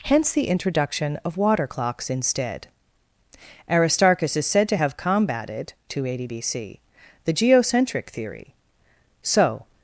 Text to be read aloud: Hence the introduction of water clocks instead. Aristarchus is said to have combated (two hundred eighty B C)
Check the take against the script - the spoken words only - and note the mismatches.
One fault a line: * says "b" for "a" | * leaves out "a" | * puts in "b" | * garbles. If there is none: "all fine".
* puts in "the geocentric theory so"